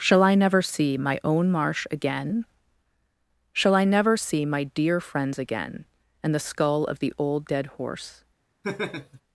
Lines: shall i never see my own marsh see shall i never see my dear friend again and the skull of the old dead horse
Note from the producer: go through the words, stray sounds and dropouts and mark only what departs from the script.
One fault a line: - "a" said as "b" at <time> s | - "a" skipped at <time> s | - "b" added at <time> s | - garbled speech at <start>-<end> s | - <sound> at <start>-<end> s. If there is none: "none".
- "see" said as "again" at 1.9 s
- "friend" said as "friends" at 5.0 s
- laugh at 8.6-9.2 s